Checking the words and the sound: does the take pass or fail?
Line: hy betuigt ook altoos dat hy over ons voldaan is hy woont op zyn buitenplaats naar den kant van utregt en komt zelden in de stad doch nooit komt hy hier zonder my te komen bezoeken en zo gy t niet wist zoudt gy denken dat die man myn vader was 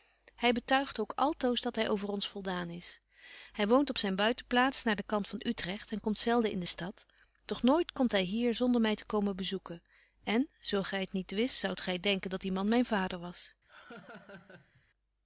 fail